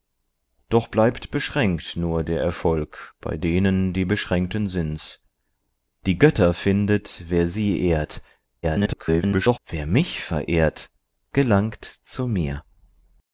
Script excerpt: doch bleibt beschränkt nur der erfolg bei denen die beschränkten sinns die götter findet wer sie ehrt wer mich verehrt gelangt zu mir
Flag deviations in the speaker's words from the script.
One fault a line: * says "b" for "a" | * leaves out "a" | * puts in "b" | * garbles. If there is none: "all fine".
* garbles